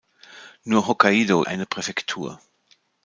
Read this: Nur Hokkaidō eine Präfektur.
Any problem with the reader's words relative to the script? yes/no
no